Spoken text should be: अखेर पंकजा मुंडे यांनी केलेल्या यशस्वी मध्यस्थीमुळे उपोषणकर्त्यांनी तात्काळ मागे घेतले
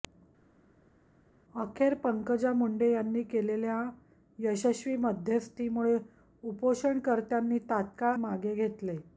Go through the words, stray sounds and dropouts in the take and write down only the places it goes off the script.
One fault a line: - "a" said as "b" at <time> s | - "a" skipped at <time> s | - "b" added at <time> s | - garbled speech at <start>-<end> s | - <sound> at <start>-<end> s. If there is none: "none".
none